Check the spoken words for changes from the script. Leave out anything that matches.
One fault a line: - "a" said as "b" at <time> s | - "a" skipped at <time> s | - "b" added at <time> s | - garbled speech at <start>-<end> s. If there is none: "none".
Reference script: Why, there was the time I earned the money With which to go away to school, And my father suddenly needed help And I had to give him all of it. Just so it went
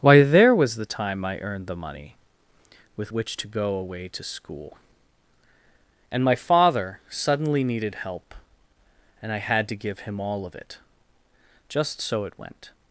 none